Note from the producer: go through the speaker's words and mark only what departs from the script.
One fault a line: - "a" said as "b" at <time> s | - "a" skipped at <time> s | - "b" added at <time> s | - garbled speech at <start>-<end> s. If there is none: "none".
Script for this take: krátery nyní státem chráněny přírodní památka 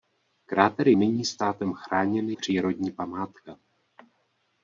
none